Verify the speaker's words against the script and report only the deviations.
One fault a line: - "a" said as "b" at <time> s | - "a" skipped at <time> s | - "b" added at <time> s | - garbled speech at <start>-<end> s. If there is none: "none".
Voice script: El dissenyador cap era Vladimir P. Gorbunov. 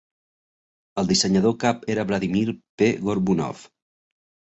none